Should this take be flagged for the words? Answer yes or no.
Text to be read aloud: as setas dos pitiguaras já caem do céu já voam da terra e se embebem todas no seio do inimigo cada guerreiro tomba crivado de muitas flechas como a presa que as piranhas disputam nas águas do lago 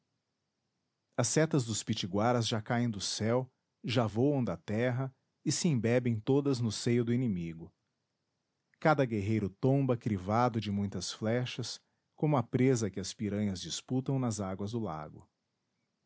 no